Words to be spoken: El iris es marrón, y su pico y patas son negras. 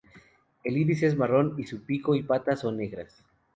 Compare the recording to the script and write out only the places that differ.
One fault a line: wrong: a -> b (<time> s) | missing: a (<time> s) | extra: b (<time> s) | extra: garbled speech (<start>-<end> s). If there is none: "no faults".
no faults